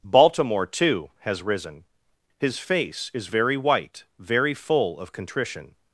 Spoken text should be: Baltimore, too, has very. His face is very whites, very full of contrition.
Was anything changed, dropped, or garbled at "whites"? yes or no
yes